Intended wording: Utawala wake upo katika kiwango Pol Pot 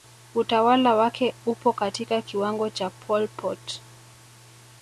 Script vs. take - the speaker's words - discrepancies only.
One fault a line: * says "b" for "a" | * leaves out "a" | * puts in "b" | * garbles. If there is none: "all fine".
* puts in "cha"